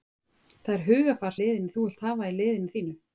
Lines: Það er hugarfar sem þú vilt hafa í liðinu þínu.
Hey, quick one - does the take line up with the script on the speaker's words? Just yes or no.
no